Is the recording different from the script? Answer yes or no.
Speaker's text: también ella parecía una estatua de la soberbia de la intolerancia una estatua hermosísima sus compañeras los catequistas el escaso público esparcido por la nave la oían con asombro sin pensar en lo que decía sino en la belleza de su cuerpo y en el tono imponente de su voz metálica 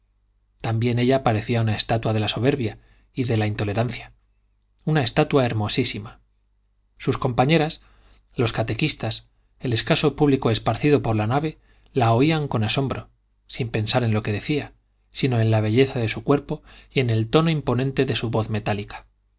yes